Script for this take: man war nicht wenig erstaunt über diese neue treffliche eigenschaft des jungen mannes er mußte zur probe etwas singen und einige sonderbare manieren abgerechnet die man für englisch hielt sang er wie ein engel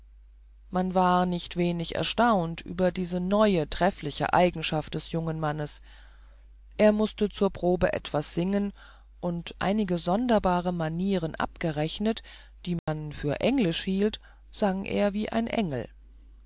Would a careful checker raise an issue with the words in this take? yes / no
no